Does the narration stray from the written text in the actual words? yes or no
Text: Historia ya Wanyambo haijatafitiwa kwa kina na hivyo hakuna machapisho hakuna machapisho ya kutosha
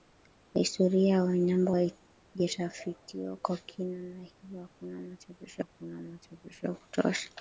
no